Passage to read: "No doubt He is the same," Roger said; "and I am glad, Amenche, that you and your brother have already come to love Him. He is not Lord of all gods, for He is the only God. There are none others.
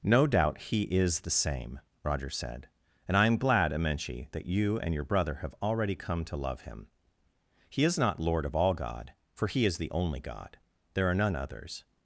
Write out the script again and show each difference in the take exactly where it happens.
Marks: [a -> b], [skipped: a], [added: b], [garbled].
"No doubt He is the same," Roger said; "and I am glad, Amenche, that you and your brother have already come to love Him. He is not Lord of all [gods, -> god] for He is the only God. There are none others.